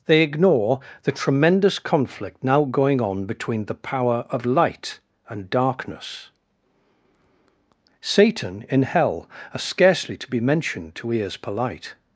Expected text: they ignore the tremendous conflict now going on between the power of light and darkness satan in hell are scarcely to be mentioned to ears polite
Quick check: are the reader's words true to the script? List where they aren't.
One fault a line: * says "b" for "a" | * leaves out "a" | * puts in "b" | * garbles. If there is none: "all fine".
all fine